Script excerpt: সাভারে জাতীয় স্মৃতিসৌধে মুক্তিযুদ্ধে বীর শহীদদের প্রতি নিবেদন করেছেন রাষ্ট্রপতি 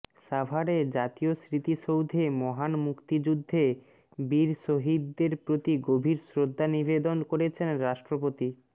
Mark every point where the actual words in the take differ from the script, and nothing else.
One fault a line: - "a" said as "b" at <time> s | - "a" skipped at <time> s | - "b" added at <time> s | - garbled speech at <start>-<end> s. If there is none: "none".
- "মহান" added at 2.4 s
- "গভীর শ্রদ্ধা" added at 5.9 s